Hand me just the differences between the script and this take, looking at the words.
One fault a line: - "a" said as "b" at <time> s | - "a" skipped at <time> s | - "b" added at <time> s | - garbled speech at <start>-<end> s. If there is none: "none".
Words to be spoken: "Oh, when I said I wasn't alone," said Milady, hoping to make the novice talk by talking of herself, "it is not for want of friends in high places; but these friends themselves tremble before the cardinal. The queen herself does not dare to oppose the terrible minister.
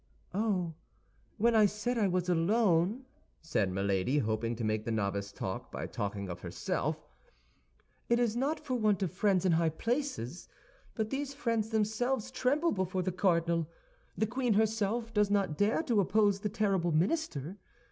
- "wasn't" said as "was" at 2.1 s